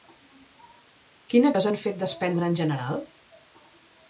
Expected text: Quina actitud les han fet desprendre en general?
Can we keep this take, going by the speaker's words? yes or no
no